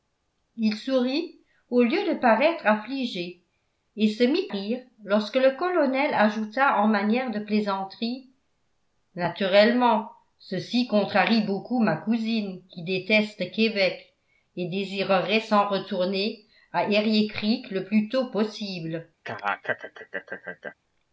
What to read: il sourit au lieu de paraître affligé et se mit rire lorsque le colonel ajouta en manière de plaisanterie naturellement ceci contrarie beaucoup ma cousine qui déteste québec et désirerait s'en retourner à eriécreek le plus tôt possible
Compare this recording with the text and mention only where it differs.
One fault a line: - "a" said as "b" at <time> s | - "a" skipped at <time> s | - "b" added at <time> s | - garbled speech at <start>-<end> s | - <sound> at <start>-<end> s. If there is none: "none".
- laugh at 19.2-20.7 s